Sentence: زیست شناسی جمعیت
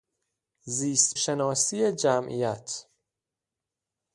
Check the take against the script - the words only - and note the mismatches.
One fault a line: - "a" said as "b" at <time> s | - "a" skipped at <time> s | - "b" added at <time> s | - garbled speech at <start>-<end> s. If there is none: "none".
none